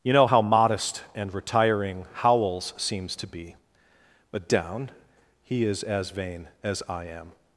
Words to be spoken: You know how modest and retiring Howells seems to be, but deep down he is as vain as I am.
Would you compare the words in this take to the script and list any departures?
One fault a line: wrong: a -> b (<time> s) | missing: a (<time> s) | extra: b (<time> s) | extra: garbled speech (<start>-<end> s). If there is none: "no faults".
missing: deep (4.5 s)